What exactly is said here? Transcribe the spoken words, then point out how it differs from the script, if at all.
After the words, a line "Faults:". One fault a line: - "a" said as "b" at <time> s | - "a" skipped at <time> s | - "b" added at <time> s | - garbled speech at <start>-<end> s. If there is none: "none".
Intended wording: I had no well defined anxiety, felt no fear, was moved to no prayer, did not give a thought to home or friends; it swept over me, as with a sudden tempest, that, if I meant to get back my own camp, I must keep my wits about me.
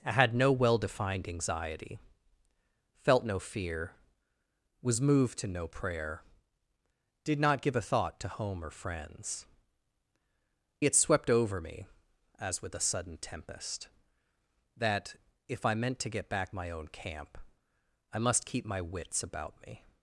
I had no well defined anxiety, felt no fear, was moved to no prayer, did not give a thought to home or friends; it swept over me, as with a sudden tempest, that, if I meant to get back my own camp, I must keep my wits about me.
Faults:
none